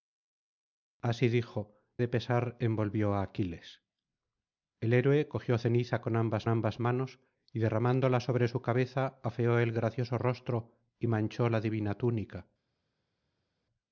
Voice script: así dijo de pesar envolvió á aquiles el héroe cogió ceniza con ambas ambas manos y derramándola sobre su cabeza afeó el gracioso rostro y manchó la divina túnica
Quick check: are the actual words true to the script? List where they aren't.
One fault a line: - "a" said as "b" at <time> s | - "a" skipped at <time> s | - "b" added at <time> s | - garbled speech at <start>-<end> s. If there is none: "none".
none